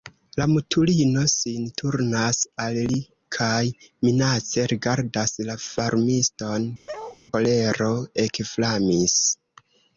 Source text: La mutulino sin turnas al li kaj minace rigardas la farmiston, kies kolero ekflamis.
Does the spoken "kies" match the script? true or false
false